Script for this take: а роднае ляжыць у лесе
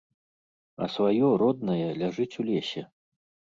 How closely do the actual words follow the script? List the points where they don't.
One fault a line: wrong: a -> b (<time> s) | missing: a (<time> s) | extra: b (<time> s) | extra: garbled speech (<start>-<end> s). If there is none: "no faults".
extra: сваё (0.9 s)